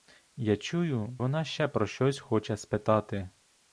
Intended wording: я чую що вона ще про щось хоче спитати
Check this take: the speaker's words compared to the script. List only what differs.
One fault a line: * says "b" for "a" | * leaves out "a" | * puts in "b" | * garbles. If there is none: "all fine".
* leaves out "що"